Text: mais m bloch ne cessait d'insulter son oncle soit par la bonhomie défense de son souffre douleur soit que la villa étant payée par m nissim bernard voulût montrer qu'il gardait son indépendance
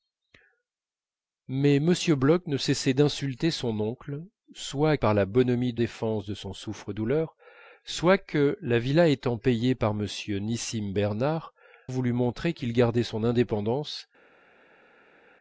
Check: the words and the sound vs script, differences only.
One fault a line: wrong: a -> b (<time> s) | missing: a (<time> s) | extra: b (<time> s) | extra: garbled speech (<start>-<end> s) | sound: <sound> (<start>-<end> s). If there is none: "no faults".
no faults